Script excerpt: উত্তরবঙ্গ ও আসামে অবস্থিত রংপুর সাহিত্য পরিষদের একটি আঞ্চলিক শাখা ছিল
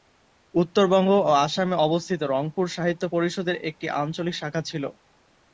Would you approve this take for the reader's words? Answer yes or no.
yes